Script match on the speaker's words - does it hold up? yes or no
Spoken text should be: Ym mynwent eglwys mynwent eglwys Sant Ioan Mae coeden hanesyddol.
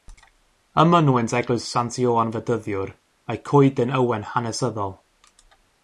no